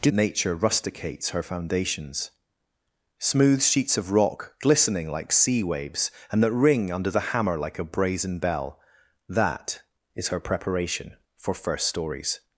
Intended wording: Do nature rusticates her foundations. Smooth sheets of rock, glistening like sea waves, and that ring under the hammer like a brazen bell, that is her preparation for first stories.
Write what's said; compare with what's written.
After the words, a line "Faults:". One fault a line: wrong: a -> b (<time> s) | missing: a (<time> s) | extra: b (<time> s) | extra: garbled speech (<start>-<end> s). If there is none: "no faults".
Do nature rusticates her foundations. Smooth sheets of rock, glistening like sea waves, and that ring under the hammer like a brazen bell, that is her preparation for first stories.
Faults:
no faults